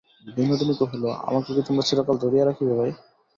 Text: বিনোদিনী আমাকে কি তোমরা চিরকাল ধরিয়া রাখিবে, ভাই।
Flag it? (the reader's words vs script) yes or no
yes